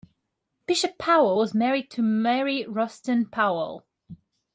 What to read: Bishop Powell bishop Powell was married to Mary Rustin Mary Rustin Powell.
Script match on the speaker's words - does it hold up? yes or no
no